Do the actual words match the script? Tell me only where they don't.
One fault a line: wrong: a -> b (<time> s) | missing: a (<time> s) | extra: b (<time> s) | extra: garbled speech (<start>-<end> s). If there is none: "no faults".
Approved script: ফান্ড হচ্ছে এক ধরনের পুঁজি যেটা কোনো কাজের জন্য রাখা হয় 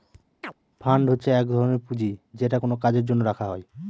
no faults